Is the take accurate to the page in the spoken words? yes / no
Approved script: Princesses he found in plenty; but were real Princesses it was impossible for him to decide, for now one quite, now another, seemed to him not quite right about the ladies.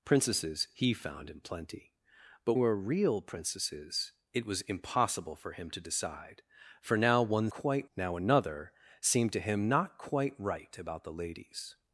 yes